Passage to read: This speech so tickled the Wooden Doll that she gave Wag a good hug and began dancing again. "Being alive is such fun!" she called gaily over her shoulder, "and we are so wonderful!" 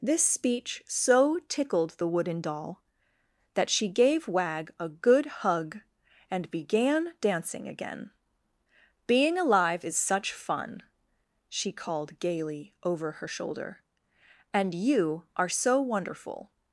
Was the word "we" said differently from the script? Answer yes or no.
yes